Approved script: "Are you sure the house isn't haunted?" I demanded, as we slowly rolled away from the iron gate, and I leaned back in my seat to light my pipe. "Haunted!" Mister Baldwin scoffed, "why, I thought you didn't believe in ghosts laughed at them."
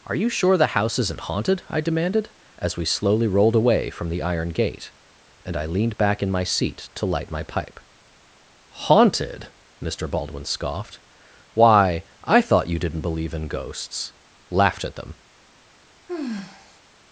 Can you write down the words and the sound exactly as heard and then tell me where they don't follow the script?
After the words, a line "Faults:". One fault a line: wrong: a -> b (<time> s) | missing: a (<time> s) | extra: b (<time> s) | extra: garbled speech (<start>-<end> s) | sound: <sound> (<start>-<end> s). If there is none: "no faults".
"Are you sure the house isn't haunted?" I demanded, as we slowly rolled away from the iron gate, and I leaned back in my seat to light my pipe. "Haunted!" Mister Baldwin scoffed, "why, I thought you didn't believe in ghosts laughed at them."
Faults:
sound: sigh (16.1-16.8 s)